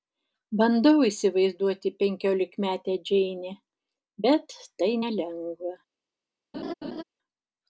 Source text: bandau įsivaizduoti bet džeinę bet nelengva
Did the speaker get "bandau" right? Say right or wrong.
right